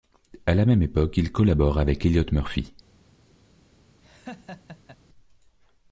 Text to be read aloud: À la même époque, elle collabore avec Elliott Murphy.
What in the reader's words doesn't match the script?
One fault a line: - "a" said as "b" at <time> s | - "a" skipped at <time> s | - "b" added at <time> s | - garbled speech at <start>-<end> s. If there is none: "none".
- "elle" said as "il" at 1.2 s